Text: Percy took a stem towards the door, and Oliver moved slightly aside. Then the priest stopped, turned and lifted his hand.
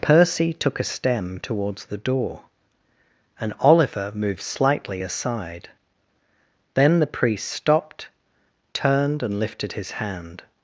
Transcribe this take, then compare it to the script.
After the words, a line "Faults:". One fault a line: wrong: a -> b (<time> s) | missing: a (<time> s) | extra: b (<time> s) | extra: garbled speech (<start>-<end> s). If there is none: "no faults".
Percy took a stem towards the door, and Oliver moved slightly aside. Then the priest stopped, turned and lifted his hand.
Faults:
no faults